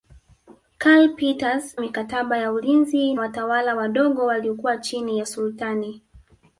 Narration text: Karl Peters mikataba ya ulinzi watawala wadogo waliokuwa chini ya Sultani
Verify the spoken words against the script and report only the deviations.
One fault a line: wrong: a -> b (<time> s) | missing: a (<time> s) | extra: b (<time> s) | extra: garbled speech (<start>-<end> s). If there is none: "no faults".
no faults